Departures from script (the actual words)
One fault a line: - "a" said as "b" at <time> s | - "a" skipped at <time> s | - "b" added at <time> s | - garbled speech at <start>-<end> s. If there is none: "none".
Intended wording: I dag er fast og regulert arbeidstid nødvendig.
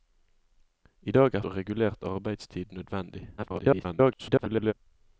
- "fast" skipped at 1.4 s
- garbled speech at 3.4-4.7 s